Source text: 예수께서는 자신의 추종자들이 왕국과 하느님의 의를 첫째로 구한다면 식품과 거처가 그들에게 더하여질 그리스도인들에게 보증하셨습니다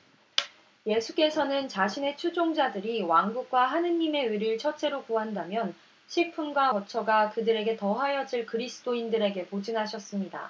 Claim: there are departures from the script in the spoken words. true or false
false